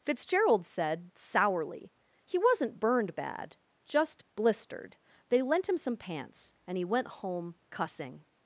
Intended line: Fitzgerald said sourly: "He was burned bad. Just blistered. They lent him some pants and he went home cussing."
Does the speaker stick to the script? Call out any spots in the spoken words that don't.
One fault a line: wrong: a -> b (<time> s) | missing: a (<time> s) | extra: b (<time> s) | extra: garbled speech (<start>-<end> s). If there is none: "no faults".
wrong: was -> wasn't (2.4 s)